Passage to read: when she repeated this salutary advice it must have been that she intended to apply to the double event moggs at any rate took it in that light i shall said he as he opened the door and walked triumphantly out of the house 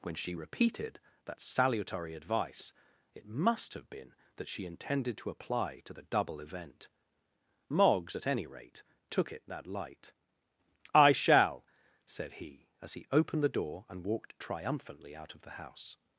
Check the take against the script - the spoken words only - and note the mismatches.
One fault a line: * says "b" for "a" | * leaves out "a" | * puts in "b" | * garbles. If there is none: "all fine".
* says "that" for "this"
* leaves out "in"